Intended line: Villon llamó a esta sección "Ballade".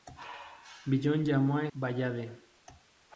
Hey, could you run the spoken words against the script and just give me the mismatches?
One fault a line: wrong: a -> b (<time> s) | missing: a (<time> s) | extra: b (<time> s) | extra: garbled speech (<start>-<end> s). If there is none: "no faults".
missing: esta sección (1.7 s)